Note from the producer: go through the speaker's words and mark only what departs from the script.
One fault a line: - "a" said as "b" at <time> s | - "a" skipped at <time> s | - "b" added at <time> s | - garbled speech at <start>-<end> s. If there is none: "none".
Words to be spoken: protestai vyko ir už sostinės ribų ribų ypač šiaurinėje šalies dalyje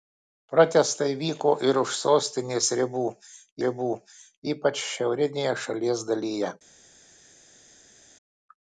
none